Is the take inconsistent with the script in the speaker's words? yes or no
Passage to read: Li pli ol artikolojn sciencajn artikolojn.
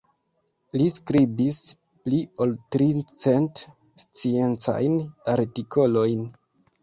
yes